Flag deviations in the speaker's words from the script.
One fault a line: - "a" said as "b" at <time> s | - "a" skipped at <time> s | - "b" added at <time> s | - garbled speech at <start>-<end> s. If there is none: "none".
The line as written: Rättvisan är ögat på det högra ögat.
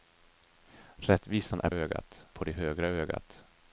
none